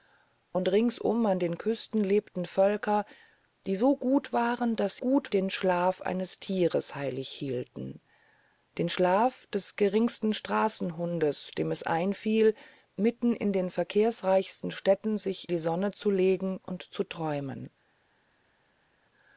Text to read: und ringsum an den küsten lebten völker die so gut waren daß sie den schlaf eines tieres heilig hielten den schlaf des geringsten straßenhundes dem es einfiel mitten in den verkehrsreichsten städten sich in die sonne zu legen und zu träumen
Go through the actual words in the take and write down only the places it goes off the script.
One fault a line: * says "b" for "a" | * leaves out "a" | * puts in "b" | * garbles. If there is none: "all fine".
* says "gut" for "sie"
* leaves out "in"